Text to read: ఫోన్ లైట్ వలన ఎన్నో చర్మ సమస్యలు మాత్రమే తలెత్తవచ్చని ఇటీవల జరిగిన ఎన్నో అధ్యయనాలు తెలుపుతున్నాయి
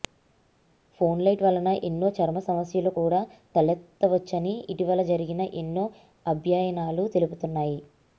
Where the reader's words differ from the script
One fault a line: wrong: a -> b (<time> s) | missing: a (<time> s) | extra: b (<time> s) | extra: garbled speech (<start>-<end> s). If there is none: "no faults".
wrong: మాత్రమే -> కూడా (3.0 s)